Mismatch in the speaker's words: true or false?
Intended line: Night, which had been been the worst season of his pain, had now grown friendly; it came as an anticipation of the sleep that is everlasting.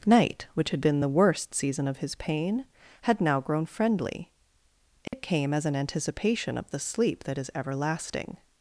true